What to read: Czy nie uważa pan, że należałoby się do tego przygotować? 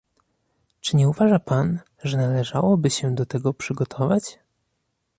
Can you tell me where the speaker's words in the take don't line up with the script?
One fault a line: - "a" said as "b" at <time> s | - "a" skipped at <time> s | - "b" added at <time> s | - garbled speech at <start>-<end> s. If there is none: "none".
none